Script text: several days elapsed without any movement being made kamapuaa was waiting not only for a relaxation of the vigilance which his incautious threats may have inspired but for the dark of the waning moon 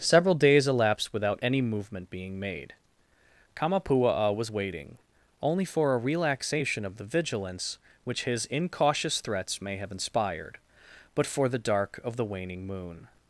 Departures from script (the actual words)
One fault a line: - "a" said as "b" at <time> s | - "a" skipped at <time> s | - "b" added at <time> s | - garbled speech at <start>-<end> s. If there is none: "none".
- "not" skipped at 5.0 s